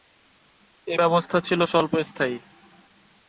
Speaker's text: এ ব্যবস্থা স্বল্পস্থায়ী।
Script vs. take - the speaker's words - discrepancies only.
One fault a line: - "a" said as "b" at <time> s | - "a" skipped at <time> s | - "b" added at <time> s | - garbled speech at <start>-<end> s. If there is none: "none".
- "ছিল" added at 1.4 s